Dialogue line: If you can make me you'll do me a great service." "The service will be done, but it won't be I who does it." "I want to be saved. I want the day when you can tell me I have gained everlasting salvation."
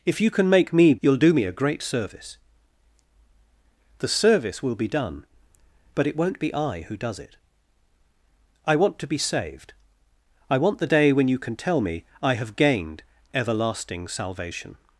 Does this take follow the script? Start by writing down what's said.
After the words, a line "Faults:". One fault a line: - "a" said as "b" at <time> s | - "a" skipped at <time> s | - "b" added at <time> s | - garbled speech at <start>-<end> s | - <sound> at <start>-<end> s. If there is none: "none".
If you can make me you'll do me a great service." "The service will be done, but it won't be I who does it." "I want to be saved. I want the day when you can tell me I have gained everlasting salvation."
Faults:
none